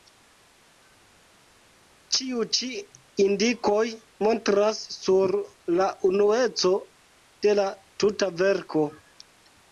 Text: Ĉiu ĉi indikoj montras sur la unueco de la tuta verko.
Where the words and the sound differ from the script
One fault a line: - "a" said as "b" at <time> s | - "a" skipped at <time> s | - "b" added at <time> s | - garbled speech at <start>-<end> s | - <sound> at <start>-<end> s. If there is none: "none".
none